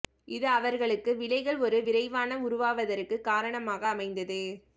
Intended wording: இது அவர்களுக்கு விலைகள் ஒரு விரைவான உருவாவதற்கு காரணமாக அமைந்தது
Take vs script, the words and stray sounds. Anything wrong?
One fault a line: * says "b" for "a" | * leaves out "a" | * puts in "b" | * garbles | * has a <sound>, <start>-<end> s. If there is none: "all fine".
all fine